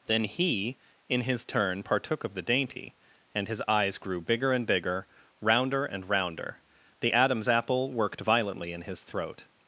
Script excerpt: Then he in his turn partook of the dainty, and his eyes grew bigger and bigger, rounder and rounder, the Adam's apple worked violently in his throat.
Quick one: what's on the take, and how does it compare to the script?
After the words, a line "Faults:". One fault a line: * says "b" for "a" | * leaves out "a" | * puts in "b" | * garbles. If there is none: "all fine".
Then he in his turn partook of the dainty, and his eyes grew bigger and bigger, rounder and rounder, the Adam's apple worked violently in his throat.
Faults:
all fine